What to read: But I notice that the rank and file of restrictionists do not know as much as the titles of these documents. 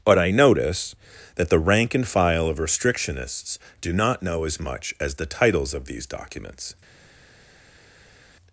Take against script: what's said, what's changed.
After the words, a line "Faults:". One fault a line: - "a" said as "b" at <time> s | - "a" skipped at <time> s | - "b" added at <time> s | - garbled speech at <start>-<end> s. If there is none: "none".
But I notice that the rank and file of restrictionists do not know as much as the titles of these documents.
Faults:
none